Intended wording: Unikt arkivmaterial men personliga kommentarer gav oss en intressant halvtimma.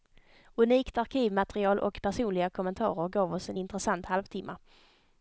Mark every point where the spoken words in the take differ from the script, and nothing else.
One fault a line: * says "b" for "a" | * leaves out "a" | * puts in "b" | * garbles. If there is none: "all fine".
* says "och" for "men"